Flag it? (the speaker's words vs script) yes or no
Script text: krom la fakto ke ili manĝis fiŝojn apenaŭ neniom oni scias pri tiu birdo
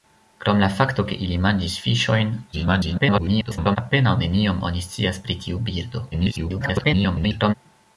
yes